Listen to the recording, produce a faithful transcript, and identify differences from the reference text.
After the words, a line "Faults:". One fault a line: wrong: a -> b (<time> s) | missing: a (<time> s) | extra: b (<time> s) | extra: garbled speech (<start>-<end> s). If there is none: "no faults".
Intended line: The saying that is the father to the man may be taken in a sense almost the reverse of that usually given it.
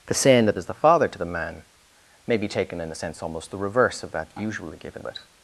The saying that is the father to the man may be taken in a sense almost the reverse of that usually given it.
Faults:
no faults